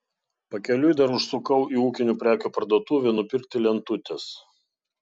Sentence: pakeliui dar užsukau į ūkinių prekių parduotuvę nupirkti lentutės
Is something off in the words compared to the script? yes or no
no